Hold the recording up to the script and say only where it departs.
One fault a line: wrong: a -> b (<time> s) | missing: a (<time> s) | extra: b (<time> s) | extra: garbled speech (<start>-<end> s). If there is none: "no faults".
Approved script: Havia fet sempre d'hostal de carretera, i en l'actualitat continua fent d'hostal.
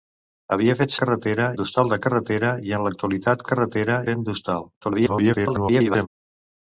wrong: sempre -> carretera (1.0 s)
wrong: continua -> carretera (3.5 s)
extra: garbled speech (4.8-6.1 s)